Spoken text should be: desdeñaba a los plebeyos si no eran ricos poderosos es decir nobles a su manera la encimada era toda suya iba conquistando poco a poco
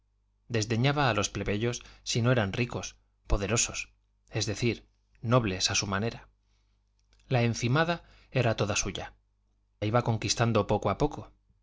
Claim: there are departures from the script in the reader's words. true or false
false